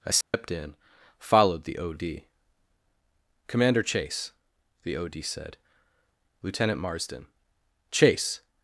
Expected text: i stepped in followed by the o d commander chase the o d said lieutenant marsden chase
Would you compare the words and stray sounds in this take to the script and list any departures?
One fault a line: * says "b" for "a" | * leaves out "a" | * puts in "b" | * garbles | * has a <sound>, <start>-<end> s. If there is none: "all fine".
* has a dropout, 0.2-0.3 s
* leaves out "by"